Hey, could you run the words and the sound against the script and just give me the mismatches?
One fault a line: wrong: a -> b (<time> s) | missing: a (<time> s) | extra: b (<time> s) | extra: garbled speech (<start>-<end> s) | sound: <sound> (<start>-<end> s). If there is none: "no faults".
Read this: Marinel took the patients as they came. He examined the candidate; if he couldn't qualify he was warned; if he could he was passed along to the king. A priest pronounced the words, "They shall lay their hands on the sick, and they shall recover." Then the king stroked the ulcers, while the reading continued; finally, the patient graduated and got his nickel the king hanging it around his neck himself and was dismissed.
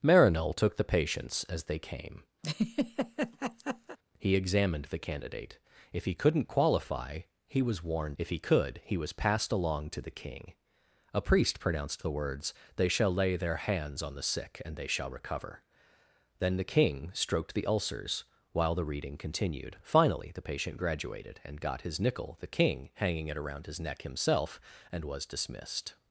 sound: laugh (2.4-4.0 s)